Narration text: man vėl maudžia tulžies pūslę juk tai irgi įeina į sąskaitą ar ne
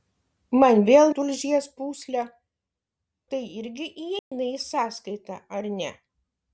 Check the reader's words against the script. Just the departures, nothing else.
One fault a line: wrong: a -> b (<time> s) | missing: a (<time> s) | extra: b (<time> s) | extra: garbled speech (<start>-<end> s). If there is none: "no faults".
missing: maudžia (1.1 s)
missing: juk (2.2 s)